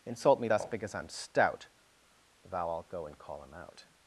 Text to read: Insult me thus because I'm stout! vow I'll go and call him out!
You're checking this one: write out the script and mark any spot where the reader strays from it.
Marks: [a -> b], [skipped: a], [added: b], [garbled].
Insult me thus because I'm stout! vow I'll go and call him out!